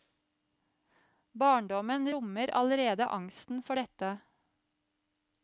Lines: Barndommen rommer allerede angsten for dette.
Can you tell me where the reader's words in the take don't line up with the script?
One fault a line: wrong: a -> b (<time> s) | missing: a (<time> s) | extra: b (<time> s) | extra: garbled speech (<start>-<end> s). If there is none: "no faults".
no faults